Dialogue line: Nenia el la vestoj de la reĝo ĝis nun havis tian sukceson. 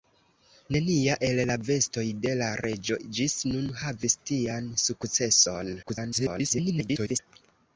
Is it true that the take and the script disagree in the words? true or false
true